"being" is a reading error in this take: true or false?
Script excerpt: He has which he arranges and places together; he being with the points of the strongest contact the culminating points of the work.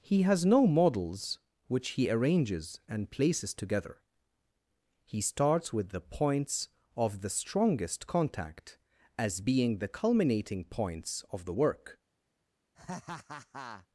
true